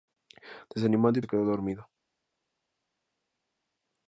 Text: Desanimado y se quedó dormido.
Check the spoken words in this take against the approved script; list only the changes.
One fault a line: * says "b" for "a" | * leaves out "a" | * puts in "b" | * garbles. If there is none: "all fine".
all fine